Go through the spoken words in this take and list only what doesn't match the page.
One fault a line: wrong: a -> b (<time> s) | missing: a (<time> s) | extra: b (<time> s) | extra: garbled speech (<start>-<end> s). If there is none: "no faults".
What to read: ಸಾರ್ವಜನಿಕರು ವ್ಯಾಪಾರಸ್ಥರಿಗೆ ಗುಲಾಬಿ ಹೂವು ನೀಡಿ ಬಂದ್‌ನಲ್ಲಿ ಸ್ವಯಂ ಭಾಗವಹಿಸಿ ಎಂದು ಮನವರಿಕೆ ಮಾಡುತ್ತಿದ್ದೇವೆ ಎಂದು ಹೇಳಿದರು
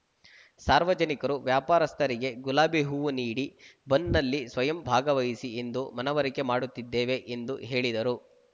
no faults